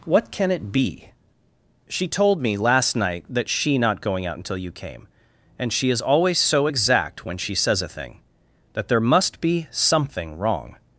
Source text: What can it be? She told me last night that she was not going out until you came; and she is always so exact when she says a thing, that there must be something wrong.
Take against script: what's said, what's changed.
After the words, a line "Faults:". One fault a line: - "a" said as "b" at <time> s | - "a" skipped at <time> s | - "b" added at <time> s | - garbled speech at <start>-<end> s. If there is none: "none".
What can it be? She told me last night that she not going out until you came; and she is always so exact when she says a thing, that there must be something wrong.
Faults:
- "was" skipped at 3.8 s